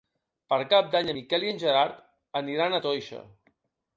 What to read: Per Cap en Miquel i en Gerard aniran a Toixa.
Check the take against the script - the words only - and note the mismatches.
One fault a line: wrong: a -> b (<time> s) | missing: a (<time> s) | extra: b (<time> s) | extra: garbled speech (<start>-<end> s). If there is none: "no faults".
extra: d'Any (0.9 s)